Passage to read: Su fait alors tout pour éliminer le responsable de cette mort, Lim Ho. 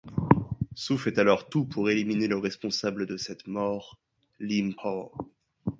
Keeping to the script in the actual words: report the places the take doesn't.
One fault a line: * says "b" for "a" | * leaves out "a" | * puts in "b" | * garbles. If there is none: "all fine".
all fine